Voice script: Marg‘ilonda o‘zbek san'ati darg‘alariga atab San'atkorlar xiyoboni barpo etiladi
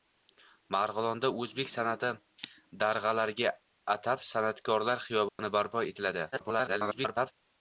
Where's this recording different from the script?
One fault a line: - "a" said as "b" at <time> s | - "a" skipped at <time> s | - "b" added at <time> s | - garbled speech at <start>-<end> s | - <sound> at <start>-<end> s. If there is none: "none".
- dropout at 5.3-5.4 s
- garbled speech at 6.3-7.3 s